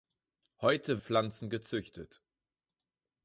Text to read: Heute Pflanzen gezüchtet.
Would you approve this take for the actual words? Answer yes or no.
yes